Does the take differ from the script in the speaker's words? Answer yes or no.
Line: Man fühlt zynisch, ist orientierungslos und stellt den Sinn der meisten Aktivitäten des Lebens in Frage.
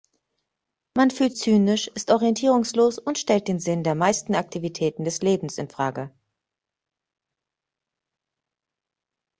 no